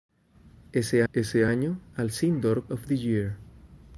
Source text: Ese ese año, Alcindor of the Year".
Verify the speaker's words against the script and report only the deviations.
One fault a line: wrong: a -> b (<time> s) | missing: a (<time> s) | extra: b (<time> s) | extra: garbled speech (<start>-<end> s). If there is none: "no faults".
no faults